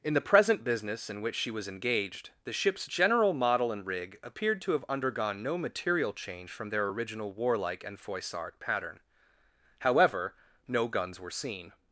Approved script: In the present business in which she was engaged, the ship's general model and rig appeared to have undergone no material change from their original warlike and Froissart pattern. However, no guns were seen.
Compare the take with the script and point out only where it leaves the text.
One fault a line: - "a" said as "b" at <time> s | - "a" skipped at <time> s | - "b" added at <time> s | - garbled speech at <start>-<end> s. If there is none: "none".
none